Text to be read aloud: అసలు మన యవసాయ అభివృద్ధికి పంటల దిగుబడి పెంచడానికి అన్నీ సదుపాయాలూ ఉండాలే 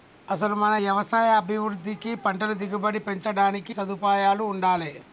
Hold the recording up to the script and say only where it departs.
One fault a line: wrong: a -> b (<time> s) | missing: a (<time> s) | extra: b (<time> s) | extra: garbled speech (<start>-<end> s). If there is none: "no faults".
missing: అన్నీ (3.7 s)